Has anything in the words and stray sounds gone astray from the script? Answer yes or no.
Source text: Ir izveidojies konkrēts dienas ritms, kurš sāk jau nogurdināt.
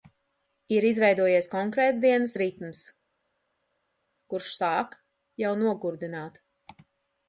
no